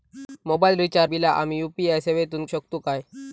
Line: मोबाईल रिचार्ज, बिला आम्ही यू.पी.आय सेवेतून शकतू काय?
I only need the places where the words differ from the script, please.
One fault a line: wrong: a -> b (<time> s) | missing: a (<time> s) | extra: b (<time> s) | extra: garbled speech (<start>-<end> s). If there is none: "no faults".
no faults